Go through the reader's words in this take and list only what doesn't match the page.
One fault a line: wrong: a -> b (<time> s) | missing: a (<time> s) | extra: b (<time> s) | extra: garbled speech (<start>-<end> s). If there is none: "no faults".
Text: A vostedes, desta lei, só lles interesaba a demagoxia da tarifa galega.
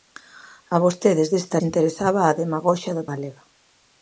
missing: lei só lles (1.6 s)
missing: tarifa (3.1 s)